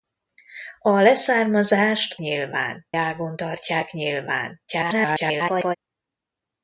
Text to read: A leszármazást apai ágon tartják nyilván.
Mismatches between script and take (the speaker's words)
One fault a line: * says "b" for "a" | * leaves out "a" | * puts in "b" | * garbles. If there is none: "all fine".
* says "nyilván" for "apai"
* garbles